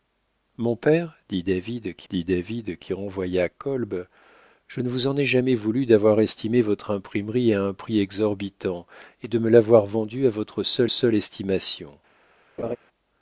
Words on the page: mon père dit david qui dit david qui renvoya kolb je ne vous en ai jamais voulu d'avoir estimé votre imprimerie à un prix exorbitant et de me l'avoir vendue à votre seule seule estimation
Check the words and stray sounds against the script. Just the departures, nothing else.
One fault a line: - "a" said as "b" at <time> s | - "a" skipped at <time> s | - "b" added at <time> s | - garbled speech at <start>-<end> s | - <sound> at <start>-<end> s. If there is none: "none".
- laugh at 12.6-12.8 s